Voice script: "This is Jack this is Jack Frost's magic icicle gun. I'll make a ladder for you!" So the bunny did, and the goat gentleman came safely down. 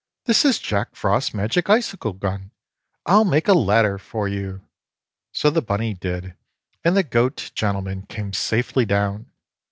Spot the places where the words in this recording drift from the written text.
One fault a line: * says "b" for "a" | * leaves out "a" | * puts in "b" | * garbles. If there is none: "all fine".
* leaves out "this is Jack"